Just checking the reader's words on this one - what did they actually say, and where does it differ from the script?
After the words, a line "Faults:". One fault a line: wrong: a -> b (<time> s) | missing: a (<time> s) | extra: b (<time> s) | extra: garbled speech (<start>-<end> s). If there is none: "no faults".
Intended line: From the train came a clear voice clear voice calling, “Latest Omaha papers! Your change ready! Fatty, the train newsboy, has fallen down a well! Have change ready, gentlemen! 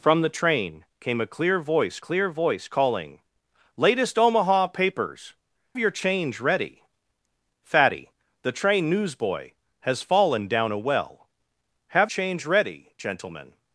From the train came a clear voice clear voice calling, “Latest Omaha papers! Your change ready! Fatty, the train newsboy, has fallen down a well! Have change ready, gentlemen!
Faults:
no faults